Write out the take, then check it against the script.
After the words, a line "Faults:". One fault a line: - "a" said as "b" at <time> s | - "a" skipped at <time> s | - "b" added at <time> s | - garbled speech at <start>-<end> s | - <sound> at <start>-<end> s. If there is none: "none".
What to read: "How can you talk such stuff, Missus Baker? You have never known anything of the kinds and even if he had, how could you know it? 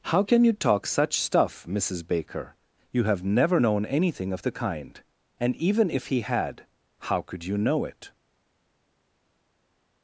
"How can you talk such stuff, Missus Baker? You have never known anything of the kind and even if he had, how could you know it?
Faults:
- "kinds" said as "kind" at 4.5 s